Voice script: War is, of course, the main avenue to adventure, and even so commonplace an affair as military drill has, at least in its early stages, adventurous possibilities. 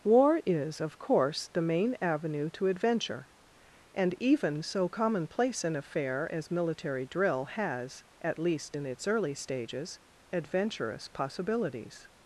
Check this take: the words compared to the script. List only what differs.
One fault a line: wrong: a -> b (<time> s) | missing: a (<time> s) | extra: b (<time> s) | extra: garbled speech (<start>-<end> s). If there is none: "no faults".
no faults